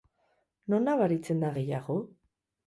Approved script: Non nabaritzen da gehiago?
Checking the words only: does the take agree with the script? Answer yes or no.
yes